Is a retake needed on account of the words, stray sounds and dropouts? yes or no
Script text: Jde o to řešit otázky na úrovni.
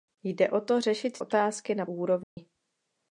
yes